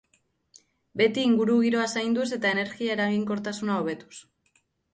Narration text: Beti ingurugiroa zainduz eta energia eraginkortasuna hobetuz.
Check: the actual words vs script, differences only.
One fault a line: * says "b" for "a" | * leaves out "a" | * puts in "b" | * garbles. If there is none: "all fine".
all fine